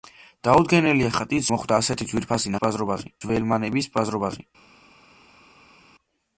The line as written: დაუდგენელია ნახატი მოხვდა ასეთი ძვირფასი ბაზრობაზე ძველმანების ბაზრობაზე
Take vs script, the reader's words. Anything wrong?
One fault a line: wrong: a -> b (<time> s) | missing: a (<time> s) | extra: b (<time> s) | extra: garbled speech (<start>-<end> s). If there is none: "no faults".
no faults